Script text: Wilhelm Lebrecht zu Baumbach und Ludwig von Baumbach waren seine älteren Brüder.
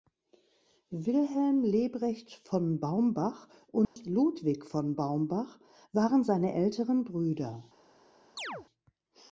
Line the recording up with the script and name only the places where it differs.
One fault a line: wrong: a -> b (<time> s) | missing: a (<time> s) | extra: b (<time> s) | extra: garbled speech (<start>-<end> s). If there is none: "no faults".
wrong: zu -> von (2.3 s)